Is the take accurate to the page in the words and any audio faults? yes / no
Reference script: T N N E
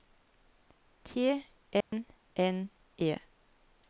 no